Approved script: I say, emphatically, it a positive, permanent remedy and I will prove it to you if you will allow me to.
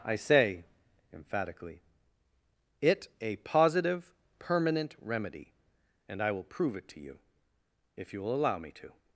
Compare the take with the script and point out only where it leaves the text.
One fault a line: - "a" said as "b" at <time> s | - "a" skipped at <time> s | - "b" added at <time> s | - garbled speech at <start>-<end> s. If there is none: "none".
none